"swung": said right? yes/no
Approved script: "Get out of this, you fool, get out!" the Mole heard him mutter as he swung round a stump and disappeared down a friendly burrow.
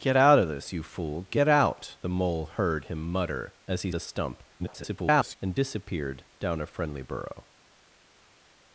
no